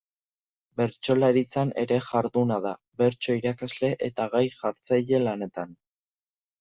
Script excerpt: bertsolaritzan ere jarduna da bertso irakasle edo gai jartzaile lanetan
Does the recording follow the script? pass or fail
fail